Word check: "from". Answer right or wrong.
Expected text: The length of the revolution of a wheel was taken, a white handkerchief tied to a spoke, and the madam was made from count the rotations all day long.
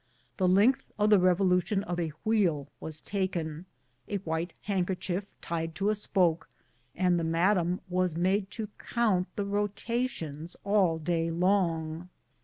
wrong